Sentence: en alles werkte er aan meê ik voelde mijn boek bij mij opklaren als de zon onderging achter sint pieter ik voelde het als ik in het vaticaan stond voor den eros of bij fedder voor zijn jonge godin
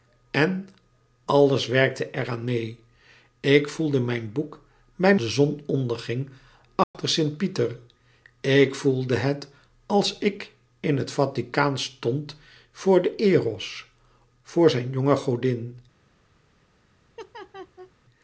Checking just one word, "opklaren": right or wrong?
wrong